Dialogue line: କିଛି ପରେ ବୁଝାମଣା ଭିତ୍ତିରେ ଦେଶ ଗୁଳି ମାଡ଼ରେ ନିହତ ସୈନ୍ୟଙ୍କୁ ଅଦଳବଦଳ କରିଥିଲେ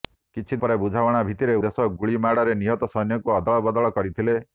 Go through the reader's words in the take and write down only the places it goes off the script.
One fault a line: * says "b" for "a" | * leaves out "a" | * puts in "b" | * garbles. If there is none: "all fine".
all fine